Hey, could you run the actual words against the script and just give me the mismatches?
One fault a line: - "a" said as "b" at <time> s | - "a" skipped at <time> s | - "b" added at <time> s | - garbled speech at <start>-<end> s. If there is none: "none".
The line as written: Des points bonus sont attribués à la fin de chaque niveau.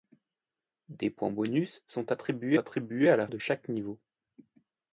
- "attribués" added at 2.6 s
- "fin" skipped at 3.3 s